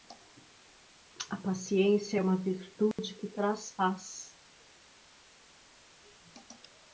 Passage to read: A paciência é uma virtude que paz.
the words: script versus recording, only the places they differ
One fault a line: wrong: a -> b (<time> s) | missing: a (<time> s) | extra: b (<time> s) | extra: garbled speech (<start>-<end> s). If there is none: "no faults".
extra: traz (3.3 s)